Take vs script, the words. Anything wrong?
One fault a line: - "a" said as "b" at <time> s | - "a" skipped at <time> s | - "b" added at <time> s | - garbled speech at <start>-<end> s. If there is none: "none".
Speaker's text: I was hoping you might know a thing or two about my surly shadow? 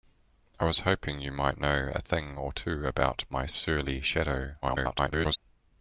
- garbled speech at 4.6-5.4 s